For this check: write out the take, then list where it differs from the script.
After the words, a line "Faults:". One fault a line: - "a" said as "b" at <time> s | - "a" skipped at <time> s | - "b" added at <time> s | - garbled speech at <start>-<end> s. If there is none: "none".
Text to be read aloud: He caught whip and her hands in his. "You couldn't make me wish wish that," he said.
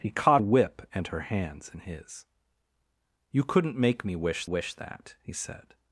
He caught whip and her hands in his. "You couldn't make me wish wish that," he said.
Faults:
none